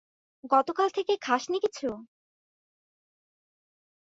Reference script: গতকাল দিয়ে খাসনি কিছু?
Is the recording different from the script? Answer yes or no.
yes